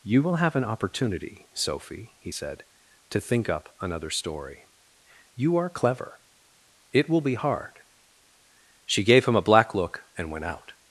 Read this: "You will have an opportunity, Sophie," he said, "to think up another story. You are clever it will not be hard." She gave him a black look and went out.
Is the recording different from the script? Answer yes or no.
yes